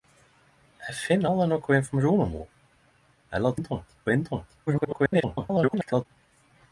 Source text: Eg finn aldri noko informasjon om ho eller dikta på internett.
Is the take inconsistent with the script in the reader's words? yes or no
yes